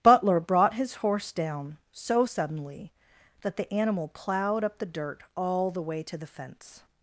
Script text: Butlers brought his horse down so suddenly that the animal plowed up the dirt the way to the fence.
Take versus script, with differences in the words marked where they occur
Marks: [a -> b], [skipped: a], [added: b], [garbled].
[Butlers -> Butler] brought his horse down so suddenly that the animal plowed up the dirt [added: all] the way to the fence.